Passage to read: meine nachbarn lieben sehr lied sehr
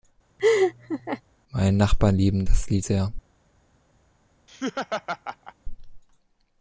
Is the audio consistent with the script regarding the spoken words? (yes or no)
no